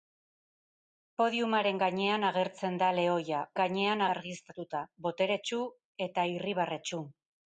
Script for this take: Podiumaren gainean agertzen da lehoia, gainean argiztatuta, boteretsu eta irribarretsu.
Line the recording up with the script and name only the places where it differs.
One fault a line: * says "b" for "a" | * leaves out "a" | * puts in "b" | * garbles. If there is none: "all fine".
all fine